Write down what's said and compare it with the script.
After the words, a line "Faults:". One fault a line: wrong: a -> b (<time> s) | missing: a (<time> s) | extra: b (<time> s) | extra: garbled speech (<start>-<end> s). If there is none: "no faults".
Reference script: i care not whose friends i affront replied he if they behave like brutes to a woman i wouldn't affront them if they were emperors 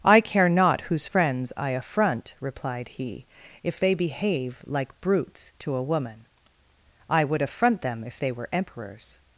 i care not whose friends i affront replied he if they behave like brutes to a woman i would affront them if they were emperors
Faults:
wrong: wouldn't -> would (7.2 s)